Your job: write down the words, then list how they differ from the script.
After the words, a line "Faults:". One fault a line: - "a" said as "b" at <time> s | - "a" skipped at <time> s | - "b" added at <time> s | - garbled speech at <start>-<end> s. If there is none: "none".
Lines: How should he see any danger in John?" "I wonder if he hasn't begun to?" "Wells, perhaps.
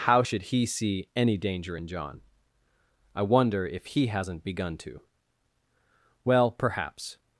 How should he see any danger in John?" "I wonder if he hasn't begun to?" "Well, perhaps.
Faults:
- "Wells" said as "Well" at 6.3 s